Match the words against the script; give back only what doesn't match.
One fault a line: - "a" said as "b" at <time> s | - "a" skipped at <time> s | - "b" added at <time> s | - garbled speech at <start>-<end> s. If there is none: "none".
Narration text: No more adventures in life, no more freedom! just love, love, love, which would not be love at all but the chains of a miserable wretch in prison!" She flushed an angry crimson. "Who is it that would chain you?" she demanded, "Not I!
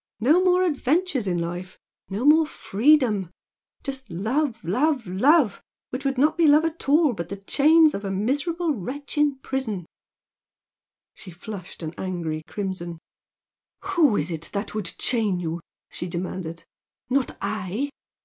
none